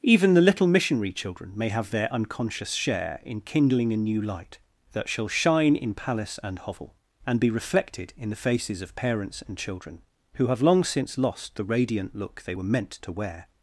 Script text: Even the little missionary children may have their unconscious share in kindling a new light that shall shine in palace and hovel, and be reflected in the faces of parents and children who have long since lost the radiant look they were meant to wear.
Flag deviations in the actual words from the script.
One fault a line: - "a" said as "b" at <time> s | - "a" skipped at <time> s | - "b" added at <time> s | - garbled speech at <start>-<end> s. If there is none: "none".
none